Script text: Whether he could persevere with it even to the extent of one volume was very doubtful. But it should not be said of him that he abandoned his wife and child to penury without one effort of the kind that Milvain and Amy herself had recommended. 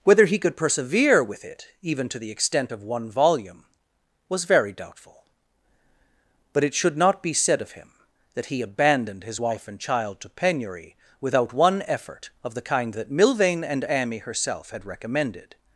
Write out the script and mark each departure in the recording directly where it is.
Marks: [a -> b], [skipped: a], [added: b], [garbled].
Whether he could persevere with it even to the extent of one volume was very doubtful. But it should not be said of him that he abandoned his wife and child to penury without one effort of the kind that Milvain and Amy herself had recommended.